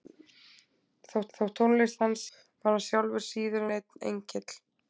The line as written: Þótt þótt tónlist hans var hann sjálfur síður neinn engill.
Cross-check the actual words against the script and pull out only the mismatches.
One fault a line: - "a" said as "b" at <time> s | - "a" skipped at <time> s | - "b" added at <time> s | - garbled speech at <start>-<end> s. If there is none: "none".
none